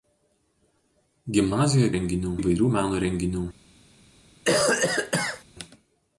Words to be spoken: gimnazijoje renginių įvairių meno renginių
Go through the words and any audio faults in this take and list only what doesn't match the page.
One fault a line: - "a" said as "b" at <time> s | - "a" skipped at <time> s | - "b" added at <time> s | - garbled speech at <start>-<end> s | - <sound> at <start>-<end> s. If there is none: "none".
- cough at 4.5-5.4 s